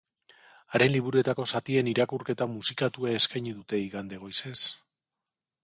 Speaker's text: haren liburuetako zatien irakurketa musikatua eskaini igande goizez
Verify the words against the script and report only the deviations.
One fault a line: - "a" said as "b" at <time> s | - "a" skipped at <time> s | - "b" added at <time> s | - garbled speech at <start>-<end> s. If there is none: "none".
- "dute" added at 3.6 s